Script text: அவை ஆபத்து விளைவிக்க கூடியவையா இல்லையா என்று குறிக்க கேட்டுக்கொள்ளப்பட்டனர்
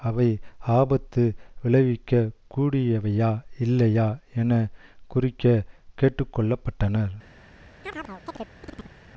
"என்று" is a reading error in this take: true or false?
true